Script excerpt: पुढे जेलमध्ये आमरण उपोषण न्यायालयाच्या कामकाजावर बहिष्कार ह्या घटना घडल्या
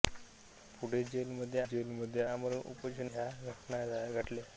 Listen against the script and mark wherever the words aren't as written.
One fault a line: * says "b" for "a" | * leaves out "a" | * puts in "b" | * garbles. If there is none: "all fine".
* puts in "जेलमध्ये"
* leaves out "न्यायालयाच्या कामकाजावर बहिष्कार"